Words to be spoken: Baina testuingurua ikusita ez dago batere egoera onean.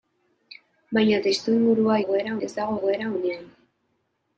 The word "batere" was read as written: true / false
false